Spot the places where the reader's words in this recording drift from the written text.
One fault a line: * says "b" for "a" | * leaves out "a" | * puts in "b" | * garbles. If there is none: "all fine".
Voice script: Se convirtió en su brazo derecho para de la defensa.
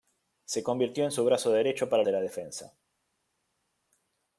all fine